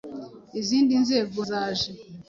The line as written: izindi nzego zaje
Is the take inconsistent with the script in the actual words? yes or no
no